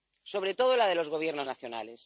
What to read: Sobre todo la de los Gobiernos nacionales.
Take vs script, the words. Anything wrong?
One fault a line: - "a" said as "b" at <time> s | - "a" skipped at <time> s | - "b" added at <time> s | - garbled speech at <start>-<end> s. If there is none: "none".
none